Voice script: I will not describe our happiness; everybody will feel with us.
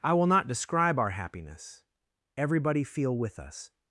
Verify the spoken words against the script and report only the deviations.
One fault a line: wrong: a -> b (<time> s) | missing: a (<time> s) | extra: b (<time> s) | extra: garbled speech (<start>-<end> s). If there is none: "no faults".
missing: will (2.8 s)